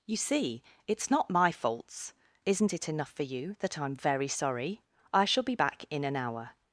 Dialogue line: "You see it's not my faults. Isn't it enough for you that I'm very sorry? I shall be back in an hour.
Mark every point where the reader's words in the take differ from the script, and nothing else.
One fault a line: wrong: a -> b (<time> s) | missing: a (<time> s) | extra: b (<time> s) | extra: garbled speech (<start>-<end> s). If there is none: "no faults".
no faults